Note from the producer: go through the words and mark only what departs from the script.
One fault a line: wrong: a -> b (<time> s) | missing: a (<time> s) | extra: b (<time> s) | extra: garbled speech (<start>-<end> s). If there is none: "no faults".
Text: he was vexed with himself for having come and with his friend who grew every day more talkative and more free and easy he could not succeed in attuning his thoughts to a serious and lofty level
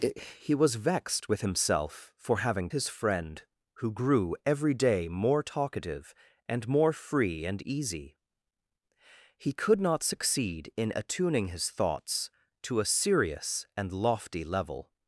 missing: come and with (2.7 s)